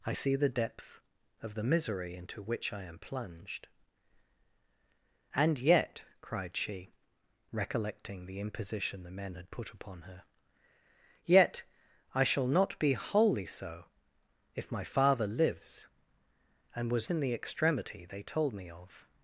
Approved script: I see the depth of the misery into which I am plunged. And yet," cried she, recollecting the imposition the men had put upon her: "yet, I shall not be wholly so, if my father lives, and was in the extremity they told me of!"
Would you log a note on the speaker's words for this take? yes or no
no